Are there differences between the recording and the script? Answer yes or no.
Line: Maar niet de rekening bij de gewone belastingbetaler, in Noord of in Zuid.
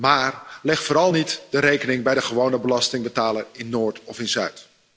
yes